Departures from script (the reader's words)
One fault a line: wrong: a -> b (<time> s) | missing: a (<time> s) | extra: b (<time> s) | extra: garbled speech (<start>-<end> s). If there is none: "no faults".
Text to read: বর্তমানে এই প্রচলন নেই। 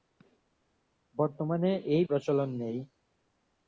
no faults